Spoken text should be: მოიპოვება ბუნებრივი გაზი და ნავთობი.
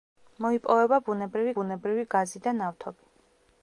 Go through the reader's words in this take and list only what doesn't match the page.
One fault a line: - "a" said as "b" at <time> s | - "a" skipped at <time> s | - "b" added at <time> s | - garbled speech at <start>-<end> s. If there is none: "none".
- "ბუნებრივი" added at 1.6 s